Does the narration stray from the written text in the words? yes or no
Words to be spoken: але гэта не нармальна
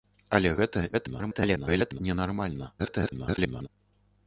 yes